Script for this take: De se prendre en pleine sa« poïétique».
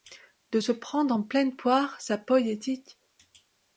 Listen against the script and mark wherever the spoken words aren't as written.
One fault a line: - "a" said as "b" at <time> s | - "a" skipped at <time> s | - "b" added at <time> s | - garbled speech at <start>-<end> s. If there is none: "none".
- "poire" added at 1.5 s